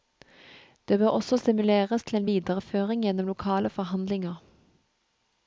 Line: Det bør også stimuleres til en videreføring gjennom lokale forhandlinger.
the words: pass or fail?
pass